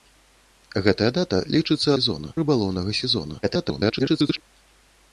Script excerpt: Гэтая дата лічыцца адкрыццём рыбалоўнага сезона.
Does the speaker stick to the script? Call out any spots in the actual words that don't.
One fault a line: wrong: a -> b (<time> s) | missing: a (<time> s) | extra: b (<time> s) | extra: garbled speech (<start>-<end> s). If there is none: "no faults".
wrong: адкрыццём -> сезона (2.0 s)
extra: garbled speech (3.4-4.4 s)